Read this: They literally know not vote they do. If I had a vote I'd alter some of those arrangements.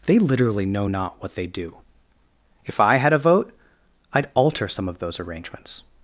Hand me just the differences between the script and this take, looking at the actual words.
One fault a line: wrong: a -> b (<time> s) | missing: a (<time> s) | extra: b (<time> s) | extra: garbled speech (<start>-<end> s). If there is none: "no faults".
wrong: vote -> what (1.2 s)